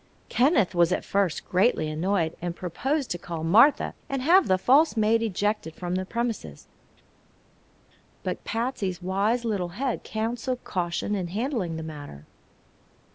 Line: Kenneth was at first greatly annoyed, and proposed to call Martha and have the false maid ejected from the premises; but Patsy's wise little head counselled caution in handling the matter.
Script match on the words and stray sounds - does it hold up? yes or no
yes